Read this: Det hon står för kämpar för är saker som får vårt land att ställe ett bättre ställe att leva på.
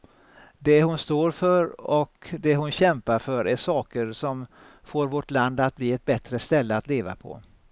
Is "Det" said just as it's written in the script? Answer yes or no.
yes